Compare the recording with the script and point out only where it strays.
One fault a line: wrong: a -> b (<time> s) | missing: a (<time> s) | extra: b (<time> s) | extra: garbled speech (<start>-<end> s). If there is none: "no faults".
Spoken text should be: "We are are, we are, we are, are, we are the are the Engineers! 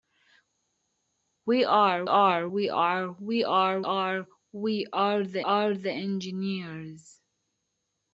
no faults